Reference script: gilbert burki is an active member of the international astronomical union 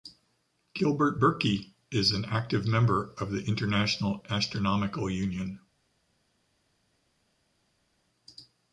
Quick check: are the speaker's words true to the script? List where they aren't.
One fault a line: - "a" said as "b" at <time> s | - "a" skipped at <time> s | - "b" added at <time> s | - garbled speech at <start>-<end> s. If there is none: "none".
none